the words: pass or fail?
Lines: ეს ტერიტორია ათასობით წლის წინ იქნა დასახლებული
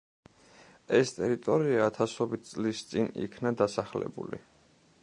pass